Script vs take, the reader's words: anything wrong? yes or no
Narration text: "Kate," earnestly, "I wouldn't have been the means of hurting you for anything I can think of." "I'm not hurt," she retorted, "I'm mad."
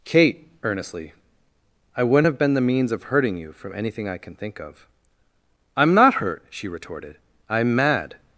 yes